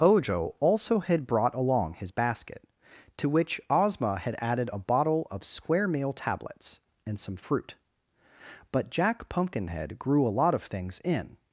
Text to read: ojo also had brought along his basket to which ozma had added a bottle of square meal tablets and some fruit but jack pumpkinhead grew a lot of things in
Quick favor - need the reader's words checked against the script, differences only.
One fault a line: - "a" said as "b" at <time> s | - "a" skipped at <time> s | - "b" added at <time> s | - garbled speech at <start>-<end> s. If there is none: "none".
none